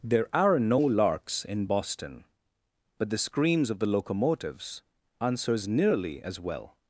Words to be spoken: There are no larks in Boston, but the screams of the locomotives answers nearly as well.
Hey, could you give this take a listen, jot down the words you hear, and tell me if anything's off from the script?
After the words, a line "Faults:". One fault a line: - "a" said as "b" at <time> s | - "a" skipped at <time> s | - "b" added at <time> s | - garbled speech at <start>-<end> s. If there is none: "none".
There are no larks in Boston, but the screams of the locomotives answers nearly as well.
Faults:
none